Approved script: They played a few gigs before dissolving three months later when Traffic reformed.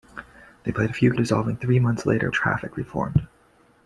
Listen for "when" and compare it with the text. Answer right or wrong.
wrong